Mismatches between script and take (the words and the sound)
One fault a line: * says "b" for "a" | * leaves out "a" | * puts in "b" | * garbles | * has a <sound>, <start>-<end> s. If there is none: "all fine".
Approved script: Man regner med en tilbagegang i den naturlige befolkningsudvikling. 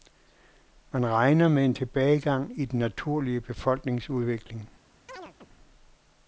* has a chirp, 5.1-5.5 s